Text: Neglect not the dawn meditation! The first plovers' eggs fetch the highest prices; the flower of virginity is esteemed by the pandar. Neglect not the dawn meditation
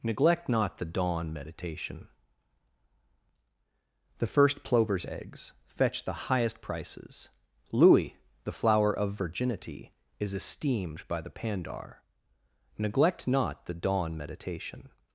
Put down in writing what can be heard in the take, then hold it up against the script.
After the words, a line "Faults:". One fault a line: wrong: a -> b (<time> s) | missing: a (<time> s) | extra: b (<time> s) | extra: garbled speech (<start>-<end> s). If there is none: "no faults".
Neglect not the dawn meditation! The first plovers' eggs fetch the highest prices; louis the flower of virginity is esteemed by the pandar. Neglect not the dawn meditation
Faults:
extra: louis (7.7 s)